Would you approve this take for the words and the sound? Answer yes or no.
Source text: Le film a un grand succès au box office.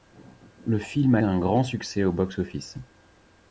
yes